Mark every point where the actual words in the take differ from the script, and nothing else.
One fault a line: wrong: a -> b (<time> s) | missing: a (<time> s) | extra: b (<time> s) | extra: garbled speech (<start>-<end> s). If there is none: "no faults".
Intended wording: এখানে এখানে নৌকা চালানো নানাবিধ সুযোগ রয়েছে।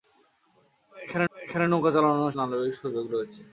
no faults